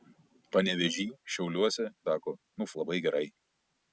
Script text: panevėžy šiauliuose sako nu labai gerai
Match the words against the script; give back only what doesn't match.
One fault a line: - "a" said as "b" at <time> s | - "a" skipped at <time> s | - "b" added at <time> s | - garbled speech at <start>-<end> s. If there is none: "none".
none